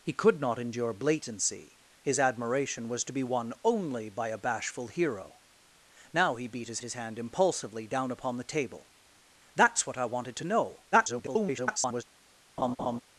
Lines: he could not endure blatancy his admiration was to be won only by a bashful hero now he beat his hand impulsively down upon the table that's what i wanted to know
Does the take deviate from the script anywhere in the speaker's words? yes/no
yes